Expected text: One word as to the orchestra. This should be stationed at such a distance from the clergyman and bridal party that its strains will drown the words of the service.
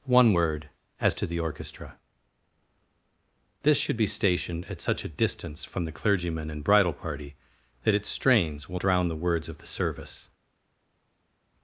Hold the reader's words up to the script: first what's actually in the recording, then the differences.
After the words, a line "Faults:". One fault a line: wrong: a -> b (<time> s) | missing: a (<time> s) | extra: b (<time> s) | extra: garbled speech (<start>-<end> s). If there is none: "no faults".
One word as to the orchestra. This should be stationed at such a distance from the clergyman and bridal party that its strains will drown the words of the service.
Faults:
no faults